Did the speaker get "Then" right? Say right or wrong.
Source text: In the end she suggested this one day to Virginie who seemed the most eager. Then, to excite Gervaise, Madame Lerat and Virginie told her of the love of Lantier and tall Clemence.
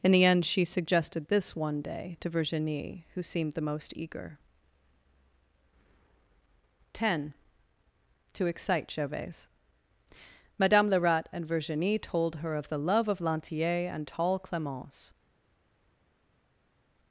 wrong